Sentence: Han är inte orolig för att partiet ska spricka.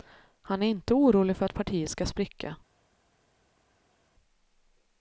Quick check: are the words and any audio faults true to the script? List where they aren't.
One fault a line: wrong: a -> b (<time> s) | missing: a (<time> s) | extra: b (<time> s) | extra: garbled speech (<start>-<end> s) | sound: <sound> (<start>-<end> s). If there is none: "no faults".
no faults